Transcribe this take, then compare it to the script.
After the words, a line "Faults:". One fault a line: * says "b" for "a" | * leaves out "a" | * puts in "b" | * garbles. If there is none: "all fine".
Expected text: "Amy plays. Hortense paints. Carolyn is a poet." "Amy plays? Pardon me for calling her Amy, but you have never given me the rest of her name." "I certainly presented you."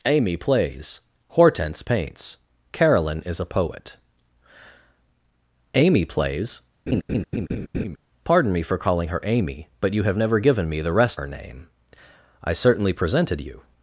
"Amy plays. Hortense paints. Carolyn is a poet." "Amy plays? Pardon me for calling her Amy, but you have never given me the rest her name." "I certainly presented you."
Faults:
* leaves out "of"